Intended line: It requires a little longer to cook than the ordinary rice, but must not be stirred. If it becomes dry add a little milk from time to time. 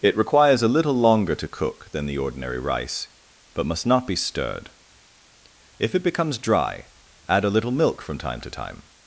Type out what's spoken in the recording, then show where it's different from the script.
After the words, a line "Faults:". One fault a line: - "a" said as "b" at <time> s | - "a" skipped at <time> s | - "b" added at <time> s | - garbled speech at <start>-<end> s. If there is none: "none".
It requires a little longer to cook than the ordinary rice, but must not be stirred. If it becomes dry add a little milk from time to time.
Faults:
none